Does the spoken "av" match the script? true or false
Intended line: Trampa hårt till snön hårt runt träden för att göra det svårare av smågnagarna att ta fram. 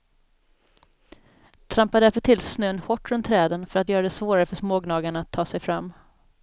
false